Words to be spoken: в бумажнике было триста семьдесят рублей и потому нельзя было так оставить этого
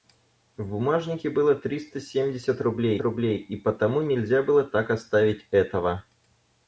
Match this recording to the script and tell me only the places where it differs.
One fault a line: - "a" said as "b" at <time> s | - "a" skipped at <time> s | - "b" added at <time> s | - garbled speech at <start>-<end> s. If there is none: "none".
- "рублей" added at 3.0 s